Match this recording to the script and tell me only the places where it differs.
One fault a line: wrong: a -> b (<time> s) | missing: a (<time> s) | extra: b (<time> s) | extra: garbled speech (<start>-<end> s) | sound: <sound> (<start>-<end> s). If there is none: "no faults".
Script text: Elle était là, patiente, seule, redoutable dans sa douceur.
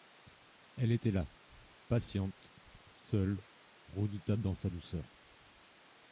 no faults